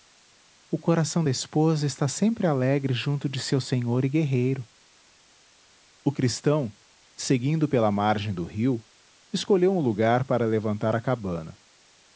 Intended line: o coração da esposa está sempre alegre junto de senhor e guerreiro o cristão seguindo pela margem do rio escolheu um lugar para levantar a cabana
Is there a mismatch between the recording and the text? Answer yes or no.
yes